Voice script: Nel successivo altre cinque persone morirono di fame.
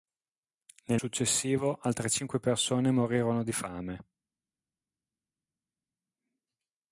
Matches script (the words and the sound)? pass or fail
pass